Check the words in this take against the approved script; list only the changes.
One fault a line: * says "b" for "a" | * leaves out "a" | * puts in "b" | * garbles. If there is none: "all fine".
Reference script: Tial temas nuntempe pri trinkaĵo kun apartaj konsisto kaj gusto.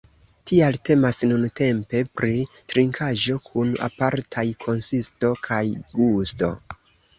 all fine